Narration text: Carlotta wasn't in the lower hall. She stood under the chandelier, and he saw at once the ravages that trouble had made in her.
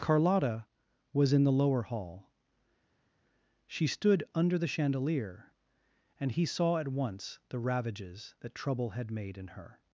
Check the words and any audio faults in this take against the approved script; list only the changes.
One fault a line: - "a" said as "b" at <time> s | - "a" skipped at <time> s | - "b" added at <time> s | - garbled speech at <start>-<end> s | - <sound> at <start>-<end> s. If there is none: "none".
- "wasn't" said as "was" at 1.1 s